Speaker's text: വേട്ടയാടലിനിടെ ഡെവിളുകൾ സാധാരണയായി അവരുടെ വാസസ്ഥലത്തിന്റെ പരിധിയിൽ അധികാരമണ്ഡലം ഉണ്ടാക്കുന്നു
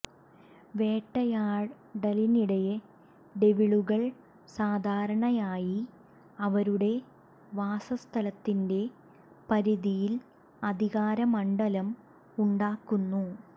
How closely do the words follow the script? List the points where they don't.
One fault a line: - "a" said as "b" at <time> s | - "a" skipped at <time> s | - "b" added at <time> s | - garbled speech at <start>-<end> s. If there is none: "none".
none